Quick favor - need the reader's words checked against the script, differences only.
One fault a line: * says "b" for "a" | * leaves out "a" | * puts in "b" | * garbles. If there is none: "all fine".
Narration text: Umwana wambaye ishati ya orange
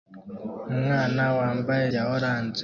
* leaves out "ishati"